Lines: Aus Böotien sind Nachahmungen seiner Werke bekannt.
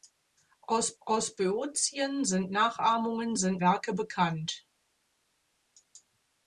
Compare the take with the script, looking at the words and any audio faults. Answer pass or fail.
fail